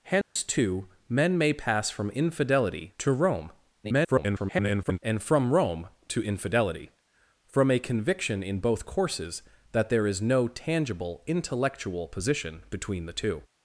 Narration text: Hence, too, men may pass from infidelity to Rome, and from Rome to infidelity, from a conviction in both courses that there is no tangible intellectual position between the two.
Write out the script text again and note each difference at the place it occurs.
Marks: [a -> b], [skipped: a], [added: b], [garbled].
Hence, too, men may pass from infidelity to Rome, [garbled] and from Rome to infidelity, from a conviction in both courses that there is no tangible intellectual position between the two.